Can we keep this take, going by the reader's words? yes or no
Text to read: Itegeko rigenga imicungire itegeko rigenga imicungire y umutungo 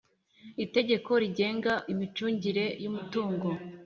no